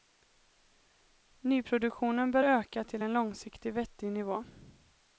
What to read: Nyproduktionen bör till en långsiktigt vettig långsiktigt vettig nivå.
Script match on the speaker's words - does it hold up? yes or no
no